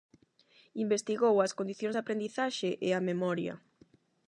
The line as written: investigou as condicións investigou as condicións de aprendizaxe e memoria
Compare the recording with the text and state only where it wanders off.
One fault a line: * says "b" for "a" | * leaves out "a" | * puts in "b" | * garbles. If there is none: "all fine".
* leaves out "investigou as condicións"
* puts in "a"